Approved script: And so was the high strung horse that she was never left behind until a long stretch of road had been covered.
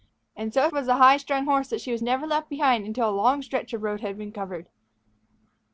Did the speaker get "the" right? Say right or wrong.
right